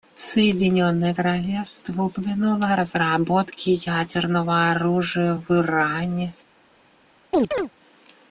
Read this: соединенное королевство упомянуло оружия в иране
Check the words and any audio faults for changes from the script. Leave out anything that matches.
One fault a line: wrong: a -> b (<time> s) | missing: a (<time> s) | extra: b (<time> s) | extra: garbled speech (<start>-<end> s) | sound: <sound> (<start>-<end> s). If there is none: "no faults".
extra: о разработке ядерного (2.7 s)
sound: chirp (7.3-7.7 s)